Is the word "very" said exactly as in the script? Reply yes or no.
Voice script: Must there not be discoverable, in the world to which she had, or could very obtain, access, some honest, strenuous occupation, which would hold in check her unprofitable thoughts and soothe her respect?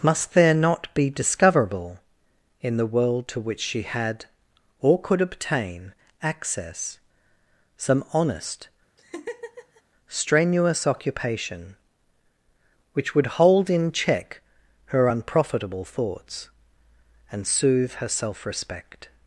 no